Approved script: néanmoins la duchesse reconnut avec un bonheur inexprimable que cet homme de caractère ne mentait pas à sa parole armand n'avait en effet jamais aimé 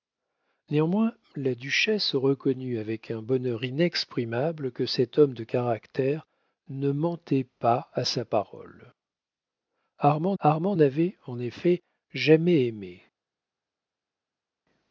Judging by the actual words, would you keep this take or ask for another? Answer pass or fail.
fail